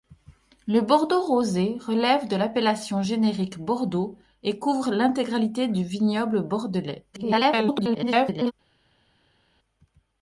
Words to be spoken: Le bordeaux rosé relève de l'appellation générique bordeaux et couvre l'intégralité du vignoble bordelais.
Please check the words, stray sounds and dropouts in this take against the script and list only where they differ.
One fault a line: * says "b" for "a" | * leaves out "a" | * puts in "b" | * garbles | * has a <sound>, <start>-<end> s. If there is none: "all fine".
* garbles